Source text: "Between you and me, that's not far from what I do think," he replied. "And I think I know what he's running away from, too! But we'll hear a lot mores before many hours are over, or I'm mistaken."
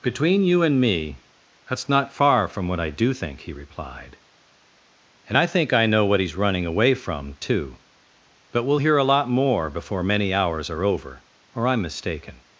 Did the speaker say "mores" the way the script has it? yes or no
no